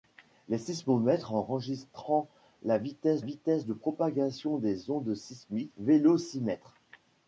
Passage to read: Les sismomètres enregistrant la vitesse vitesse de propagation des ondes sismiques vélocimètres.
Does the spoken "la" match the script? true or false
true